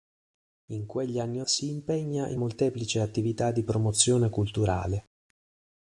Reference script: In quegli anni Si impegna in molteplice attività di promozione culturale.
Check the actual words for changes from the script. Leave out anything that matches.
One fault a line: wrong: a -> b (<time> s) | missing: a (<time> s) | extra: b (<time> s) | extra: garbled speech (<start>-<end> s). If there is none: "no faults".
no faults